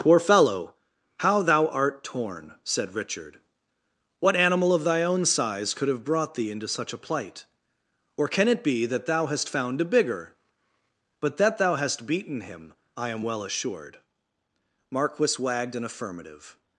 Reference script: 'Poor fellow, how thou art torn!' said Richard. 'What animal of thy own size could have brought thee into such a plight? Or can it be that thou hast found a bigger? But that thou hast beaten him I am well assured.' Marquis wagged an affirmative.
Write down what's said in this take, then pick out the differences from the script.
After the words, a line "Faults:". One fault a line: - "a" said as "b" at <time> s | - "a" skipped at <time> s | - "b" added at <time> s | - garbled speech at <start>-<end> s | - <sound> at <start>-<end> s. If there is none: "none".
'Poor fellow, how thou art torn!' said Richard. 'What animal of thy own size could have brought thee into such a plight? Or can it be that thou hast found a bigger? But that thou hast beaten him I am well assured.' Marquis wagged an affirmative.
Faults:
none